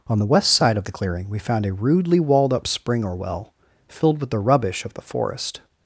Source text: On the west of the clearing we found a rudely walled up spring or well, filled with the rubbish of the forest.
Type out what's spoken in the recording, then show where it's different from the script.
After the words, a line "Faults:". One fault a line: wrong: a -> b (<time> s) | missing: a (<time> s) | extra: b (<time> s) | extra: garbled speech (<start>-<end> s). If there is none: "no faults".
On the west side of the clearing we found a rudely walled up spring or well, filled with the rubbish of the forest.
Faults:
extra: side (0.5 s)